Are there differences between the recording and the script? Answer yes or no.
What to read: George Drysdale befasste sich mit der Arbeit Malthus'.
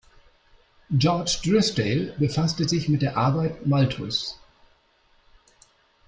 no